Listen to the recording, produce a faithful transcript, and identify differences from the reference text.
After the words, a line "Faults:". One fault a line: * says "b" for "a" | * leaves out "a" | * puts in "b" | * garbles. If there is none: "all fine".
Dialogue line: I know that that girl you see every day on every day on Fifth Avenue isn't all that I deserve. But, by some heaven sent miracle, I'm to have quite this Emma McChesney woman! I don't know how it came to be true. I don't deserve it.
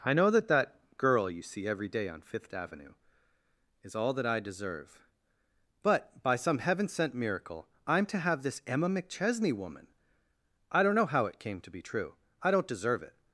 I know that that girl you see every day on Fifth Avenue is all that I deserve. But, by some heaven sent miracle, I'm to have this Emma McChesney woman! I don't know how it came to be true. I don't deserve it.
Faults:
* leaves out "every day on"
* says "is" for "isn't"
* leaves out "quite"